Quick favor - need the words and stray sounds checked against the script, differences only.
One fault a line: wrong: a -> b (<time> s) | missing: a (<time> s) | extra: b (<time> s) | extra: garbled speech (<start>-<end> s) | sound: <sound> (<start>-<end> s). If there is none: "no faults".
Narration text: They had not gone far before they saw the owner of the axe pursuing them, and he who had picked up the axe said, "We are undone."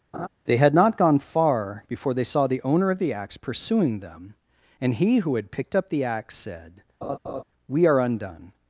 sound: laugh (0.1-0.3 s)
sound: laugh (7.0-7.4 s)